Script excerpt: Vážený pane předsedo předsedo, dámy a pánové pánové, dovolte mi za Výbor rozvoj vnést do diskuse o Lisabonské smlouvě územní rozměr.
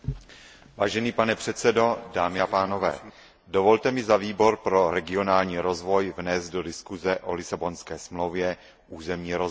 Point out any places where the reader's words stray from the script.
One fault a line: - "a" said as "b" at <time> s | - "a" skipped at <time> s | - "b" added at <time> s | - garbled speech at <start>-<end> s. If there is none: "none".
- "předsedo" skipped at 2.0 s
- "pánové" skipped at 3.0 s
- "pro regionální" added at 4.6 s